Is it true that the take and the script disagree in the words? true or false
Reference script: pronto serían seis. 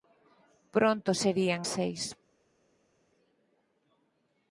false